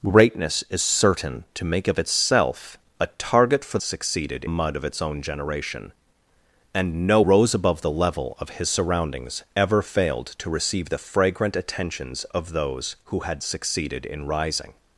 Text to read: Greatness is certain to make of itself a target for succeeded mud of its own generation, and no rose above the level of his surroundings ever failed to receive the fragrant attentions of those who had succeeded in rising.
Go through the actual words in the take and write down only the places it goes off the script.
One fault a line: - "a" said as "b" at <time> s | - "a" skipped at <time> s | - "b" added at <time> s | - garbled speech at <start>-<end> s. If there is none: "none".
none